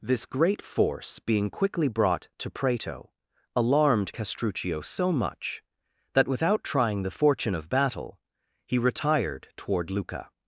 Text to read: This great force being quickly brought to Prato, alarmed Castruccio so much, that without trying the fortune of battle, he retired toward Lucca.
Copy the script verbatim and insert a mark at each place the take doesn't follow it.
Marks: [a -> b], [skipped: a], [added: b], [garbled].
This great force being quickly brought to Prato, alarmed Castruccio so much, that without trying the fortune of battle, he retired toward Lucca.